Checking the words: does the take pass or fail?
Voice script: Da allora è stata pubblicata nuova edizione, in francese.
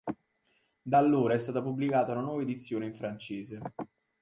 fail